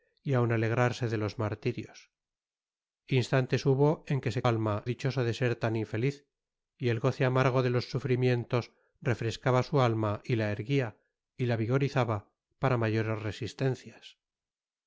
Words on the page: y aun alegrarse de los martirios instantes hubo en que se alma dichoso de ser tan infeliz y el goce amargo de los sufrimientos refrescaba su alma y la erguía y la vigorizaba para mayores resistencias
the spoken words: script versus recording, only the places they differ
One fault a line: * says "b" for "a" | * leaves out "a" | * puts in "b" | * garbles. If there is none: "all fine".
all fine